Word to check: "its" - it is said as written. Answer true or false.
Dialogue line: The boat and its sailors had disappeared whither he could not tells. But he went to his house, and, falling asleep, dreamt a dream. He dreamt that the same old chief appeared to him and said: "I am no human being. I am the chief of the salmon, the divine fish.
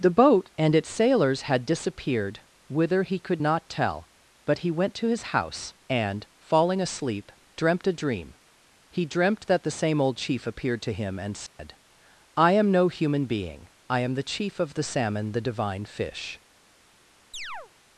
true